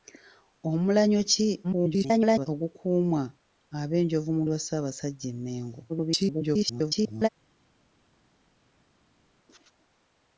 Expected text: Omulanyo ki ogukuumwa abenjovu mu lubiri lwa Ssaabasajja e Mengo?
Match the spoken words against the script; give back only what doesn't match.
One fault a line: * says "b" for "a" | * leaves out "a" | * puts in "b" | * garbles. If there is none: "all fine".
* garbles
* leaves out "lubiri"
* garbles